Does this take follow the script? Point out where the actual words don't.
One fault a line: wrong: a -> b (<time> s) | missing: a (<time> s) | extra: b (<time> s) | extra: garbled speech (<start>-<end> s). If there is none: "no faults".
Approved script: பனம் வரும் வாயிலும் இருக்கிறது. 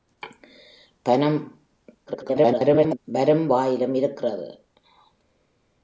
extra: garbled speech (2.1-3.0 s)